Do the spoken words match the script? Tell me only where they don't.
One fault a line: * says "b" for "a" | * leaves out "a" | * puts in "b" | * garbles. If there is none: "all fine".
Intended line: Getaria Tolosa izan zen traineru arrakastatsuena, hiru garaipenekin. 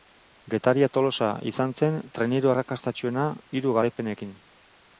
all fine